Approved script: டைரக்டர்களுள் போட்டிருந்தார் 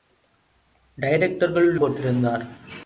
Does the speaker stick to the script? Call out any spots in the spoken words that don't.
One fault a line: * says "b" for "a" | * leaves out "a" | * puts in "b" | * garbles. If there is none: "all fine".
all fine